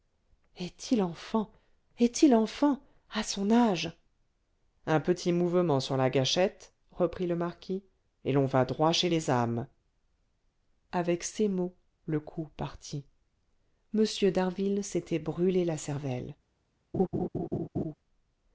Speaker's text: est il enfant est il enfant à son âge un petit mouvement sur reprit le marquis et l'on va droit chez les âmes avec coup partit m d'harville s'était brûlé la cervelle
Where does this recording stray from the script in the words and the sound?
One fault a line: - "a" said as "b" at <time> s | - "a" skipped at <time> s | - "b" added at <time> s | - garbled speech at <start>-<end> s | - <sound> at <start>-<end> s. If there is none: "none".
- "la gâchette" added at 6.0 s
- "ces mots le" added at 11.3 s
- laugh at 16.9-17.9 s